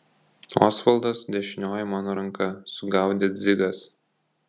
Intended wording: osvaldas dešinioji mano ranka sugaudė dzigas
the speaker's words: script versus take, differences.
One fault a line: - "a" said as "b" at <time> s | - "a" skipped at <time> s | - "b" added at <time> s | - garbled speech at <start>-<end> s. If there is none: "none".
none